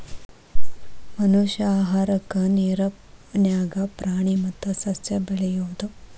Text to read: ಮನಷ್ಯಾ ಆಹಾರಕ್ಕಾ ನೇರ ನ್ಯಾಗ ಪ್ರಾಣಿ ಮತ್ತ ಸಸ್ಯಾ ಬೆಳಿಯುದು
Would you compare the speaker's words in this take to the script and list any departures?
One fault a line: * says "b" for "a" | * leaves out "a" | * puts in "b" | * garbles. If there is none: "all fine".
all fine